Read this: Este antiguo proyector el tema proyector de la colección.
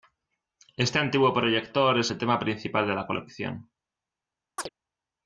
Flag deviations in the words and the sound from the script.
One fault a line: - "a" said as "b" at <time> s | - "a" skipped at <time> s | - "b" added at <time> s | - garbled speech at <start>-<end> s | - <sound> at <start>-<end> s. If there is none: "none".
- "es" added at 2.0 s
- "proyector" said as "principal" at 2.4 s
- chirp at 4.6-4.7 s